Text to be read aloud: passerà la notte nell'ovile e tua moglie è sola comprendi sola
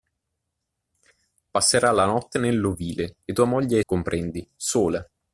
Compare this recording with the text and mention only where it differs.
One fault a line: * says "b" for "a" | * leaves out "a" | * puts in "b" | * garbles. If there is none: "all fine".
* leaves out "sola"